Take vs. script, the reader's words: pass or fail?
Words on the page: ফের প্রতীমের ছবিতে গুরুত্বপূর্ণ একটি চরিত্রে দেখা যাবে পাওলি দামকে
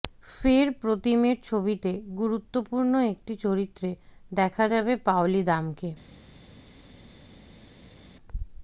pass